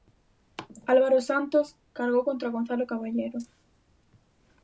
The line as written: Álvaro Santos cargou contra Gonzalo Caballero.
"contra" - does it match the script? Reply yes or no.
yes